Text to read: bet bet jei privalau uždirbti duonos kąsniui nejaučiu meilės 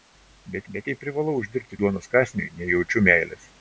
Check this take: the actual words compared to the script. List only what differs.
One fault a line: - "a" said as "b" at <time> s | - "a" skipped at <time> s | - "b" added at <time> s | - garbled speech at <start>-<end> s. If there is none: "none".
none